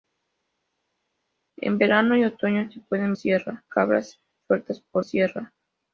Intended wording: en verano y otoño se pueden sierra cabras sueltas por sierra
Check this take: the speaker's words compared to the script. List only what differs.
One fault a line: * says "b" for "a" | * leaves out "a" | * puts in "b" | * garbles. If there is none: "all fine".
all fine